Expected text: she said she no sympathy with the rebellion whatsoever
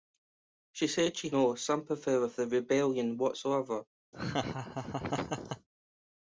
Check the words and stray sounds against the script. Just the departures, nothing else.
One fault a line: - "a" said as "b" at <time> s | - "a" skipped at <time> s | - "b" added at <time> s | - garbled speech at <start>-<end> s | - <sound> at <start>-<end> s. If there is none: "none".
- laugh at 4.1-5.7 s